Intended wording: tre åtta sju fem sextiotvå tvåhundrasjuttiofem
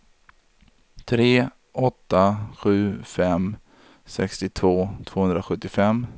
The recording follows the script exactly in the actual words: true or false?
true